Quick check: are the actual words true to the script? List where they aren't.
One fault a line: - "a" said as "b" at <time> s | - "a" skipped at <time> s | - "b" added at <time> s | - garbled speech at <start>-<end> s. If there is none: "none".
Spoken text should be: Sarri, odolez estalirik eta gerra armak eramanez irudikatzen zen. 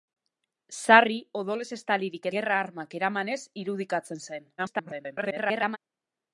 - "eta" skipped at 2.2 s
- garbled speech at 4.6-5.8 s